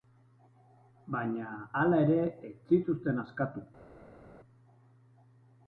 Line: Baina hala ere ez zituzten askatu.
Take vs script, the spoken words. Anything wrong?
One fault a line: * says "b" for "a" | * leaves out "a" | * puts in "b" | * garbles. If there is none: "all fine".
all fine